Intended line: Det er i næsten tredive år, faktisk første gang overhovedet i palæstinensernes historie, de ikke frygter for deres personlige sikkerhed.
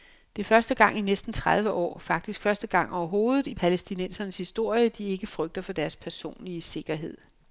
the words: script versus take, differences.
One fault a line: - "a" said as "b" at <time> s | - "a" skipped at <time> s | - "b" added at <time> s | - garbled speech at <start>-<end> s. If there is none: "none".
- "første gang" added at 0.5 s